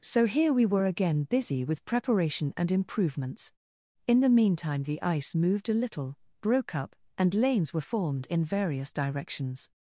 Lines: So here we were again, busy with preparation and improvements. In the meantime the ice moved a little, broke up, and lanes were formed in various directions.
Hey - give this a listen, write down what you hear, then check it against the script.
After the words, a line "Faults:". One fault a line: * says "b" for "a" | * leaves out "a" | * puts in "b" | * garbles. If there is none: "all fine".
So here we were again, busy with preparation and improvements. In the meantime the ice moved a little, broke up, and lanes were formed in various directions.
Faults:
all fine